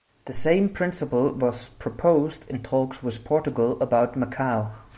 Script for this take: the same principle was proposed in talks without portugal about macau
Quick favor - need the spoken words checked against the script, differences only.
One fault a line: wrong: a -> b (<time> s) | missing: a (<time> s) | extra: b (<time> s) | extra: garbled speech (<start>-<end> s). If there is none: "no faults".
wrong: without -> with (3.0 s)